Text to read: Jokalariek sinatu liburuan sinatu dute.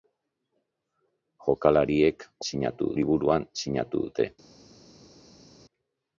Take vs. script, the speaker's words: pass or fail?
pass